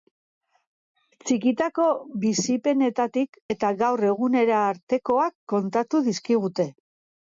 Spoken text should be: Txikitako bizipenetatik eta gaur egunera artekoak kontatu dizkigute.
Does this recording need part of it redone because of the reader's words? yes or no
no